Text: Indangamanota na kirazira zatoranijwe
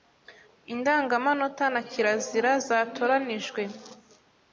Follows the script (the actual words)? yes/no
yes